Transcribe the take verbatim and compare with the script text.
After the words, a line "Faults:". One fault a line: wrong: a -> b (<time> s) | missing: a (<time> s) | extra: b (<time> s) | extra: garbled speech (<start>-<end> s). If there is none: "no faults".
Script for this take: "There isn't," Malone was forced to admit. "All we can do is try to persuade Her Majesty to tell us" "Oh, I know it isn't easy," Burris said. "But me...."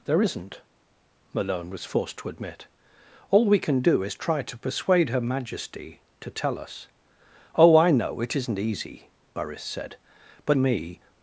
"There isn't," Malone was forced to admit. "All we can do is try to persuade Her Majesty to tell us" "Oh, I know it isn't easy," Burris said. "But me...."
Faults:
no faults